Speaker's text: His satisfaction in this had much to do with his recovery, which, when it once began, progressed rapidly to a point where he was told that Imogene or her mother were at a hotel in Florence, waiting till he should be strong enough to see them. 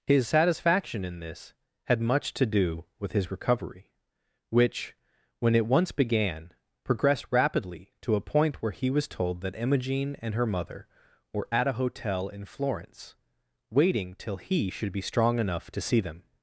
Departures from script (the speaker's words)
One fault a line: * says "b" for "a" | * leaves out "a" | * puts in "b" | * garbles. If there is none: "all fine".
* says "and" for "or"